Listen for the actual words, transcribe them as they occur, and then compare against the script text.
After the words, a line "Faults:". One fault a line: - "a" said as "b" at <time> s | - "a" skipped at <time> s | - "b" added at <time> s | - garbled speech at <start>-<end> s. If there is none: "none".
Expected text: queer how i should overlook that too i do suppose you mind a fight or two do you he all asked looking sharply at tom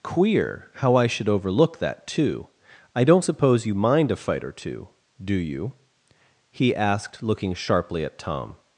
queer how i should overlook that too i don't suppose you mind a fight or two do you he asked looking sharply at tom
Faults:
- "do" said as "don't" at 3.0 s
- "all" skipped at 6.7 s